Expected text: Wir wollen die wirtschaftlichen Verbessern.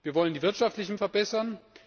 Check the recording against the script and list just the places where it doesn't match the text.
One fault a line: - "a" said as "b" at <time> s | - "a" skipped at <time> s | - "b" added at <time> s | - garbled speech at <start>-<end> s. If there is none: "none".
none